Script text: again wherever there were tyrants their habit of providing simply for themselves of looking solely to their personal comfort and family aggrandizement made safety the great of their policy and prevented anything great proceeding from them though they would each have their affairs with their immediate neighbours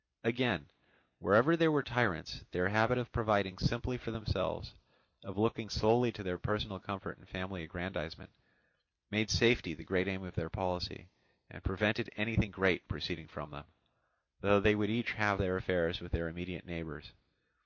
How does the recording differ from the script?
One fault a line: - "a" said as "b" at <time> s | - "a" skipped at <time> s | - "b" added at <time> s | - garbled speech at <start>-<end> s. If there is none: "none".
- "aim" added at 10.1 s